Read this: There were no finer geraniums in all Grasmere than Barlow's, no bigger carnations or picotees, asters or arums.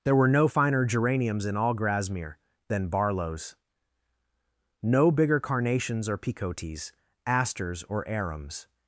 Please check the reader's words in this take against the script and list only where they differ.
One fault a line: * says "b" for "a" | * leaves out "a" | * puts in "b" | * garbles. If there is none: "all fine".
all fine